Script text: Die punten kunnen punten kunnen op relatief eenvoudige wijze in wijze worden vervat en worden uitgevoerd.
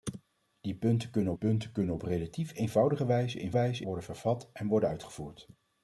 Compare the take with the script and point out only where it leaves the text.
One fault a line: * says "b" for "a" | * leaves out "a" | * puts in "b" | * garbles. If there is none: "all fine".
all fine